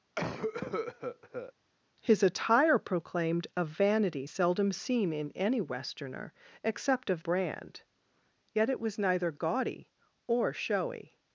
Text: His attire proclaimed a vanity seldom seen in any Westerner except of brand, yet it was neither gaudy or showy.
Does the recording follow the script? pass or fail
pass